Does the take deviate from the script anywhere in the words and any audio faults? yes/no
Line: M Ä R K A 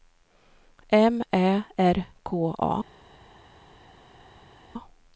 no